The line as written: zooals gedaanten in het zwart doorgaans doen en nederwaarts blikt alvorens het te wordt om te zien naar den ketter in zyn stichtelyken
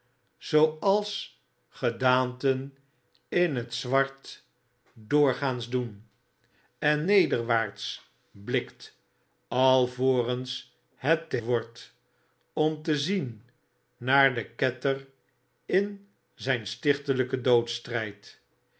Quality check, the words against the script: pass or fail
pass